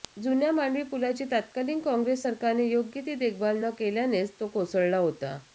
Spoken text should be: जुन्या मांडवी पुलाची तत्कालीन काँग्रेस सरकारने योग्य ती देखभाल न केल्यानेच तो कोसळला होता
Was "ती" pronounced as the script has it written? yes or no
yes